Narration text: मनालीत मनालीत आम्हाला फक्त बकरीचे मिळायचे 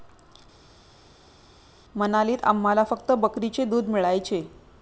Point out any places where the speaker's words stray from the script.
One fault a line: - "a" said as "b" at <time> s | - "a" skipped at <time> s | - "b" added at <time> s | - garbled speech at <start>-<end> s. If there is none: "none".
- "मनालीत" skipped at 2.4 s
- "दूध" added at 3.6 s